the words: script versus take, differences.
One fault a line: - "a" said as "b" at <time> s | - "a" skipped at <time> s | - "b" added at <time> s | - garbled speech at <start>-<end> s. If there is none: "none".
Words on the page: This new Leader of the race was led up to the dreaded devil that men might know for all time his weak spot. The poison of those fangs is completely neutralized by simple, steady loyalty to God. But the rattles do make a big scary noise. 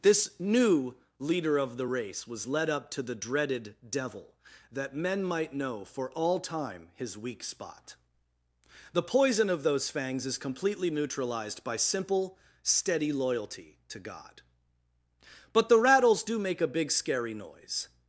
none